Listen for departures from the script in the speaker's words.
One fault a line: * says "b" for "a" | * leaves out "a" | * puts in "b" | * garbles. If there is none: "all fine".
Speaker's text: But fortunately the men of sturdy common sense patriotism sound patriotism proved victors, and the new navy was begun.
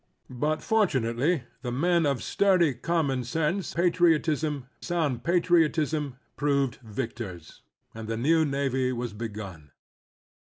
all fine